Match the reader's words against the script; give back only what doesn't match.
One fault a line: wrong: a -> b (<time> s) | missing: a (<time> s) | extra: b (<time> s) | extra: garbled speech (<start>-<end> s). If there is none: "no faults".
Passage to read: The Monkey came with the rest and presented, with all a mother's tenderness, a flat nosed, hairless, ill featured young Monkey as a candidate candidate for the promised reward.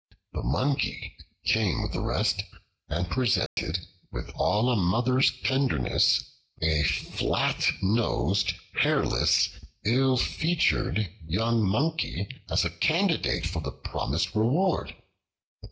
missing: candidate (13.5 s)